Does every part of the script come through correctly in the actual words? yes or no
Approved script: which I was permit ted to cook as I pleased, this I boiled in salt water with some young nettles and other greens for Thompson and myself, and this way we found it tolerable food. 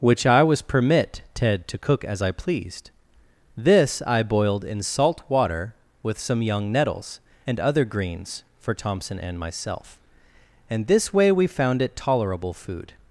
yes